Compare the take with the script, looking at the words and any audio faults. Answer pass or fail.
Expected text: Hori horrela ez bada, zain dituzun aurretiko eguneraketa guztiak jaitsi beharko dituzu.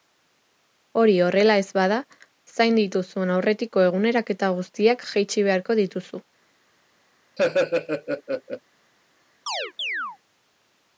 fail